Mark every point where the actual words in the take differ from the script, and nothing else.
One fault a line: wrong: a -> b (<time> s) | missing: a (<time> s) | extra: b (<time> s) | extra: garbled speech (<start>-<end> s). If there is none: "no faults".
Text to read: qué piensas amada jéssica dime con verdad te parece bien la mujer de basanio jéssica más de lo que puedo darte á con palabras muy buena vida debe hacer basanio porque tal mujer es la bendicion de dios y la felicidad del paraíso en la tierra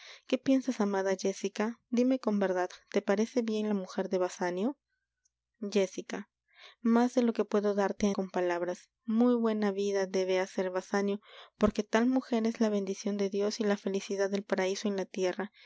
no faults